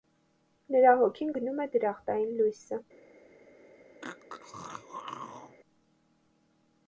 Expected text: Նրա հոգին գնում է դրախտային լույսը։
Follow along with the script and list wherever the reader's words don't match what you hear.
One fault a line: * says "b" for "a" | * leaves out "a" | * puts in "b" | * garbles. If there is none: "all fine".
all fine